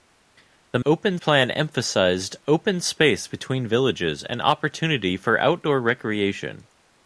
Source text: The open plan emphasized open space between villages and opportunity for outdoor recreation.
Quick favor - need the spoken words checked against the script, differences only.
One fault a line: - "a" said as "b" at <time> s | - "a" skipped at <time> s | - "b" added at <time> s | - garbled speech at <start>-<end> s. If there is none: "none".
none